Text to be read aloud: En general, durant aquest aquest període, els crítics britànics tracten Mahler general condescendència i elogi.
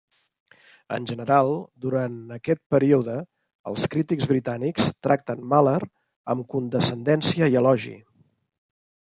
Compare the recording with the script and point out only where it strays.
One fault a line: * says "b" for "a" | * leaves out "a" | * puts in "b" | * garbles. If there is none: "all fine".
* leaves out "aquest"
* says "amb" for "general"